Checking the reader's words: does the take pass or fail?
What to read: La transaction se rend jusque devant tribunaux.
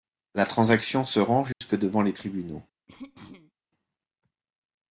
fail